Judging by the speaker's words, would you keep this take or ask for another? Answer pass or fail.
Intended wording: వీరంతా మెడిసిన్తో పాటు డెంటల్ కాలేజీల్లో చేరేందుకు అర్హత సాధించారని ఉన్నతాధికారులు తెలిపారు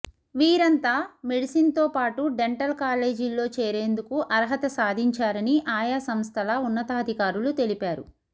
fail